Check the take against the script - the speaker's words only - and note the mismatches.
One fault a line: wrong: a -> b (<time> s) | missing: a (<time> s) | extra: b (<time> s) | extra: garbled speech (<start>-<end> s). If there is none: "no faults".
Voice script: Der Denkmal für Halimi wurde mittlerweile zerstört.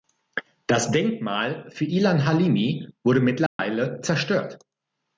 wrong: Der -> Das (0.7 s)
extra: Ilan (1.9 s)